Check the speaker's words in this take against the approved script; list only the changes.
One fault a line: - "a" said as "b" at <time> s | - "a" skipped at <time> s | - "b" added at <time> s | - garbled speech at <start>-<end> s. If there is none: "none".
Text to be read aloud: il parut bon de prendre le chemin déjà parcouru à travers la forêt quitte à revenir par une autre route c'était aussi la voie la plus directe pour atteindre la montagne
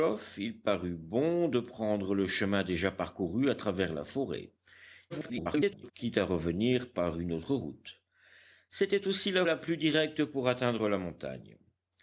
- garbled speech at 5.1-5.9 s
- "voie" skipped at 9.4 s